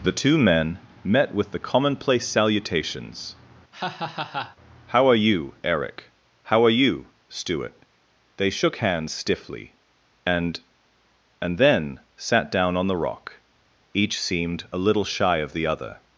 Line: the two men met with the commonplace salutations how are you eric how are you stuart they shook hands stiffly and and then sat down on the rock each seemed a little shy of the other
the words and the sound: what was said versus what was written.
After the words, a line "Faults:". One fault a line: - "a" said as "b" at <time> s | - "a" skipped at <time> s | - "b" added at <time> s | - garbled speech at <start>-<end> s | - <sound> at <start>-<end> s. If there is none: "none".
the two men met with the commonplace salutations how are you eric how are you stuart they shook hands stiffly and and then sat down on the rock each seemed a little shy of the other
Faults:
- laugh at 3.7-4.6 s